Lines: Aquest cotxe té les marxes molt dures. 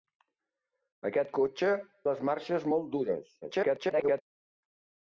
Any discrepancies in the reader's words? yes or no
yes